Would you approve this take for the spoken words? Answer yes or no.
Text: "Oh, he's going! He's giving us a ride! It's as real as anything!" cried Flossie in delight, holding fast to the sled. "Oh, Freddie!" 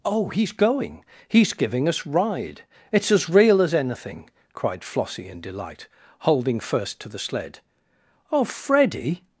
no